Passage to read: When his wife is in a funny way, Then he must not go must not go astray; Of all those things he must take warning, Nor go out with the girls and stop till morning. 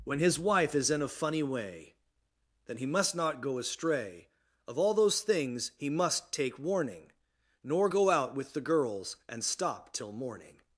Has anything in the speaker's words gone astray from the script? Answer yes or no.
yes